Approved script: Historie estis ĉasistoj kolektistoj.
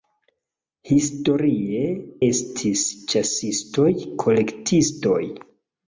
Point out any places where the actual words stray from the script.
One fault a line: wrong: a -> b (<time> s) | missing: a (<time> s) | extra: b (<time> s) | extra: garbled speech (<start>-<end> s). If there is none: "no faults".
no faults